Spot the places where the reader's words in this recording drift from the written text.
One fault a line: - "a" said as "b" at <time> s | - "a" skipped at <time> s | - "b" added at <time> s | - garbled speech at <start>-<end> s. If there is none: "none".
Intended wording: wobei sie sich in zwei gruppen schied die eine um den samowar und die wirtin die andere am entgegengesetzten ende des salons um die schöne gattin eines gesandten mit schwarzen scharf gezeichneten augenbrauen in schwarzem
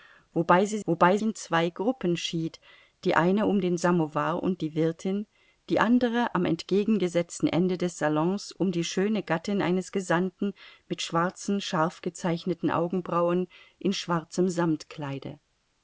- "sich" said as "wobei" at 0.8 s